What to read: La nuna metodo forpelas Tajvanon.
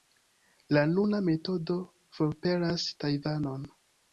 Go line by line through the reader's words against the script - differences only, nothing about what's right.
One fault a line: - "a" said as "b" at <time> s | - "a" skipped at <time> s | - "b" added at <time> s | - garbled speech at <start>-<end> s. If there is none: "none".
none